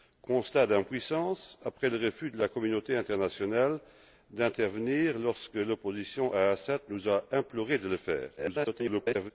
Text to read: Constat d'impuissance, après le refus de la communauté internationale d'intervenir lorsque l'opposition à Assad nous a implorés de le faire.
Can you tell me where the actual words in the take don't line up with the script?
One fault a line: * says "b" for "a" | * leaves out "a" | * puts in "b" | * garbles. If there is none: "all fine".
* garbles